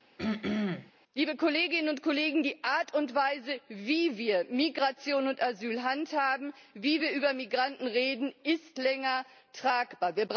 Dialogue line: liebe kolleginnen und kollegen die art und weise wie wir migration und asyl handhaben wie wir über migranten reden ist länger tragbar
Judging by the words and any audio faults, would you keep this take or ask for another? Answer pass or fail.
fail